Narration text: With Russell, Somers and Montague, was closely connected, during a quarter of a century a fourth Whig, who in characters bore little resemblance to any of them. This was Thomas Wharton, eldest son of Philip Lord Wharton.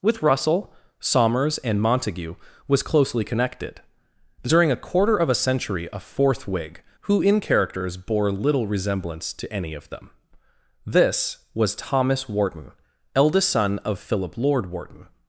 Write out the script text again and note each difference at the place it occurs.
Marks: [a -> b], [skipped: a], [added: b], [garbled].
With Russell, Somers and Montague, was closely connected, during a quarter of a century a fourth Whig, who in characters bore little resemblance to any of them. This was Thomas Wharton, eldest son of Philip Lord Wharton.